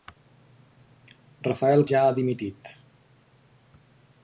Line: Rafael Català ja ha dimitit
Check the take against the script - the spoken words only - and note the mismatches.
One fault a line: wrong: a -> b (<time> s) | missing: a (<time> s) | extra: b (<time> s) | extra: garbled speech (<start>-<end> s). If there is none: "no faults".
missing: Català (1.9 s)